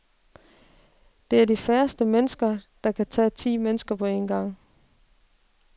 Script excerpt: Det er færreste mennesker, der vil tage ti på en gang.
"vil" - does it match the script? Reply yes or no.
no